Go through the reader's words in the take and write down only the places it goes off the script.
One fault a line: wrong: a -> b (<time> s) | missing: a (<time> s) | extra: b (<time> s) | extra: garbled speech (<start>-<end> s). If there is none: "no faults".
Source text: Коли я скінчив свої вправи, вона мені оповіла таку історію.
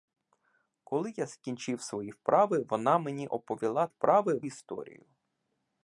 wrong: таку -> вправи (3.9 s)